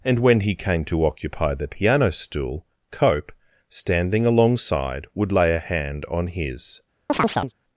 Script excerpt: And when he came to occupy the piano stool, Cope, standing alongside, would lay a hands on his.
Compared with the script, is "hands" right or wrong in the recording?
wrong